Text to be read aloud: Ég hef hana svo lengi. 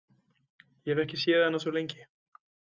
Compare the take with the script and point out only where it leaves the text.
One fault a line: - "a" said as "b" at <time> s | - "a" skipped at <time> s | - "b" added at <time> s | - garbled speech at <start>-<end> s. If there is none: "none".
- "ekki séð" added at 1.0 s